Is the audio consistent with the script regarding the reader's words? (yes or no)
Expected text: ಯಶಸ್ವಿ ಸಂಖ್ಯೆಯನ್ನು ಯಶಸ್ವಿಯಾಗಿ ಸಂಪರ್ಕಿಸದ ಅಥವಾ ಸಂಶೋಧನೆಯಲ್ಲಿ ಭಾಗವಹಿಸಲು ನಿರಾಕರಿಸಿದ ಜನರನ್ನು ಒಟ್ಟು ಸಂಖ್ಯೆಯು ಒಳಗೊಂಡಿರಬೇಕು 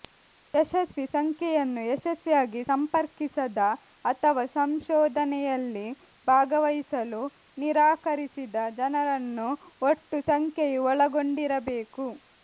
yes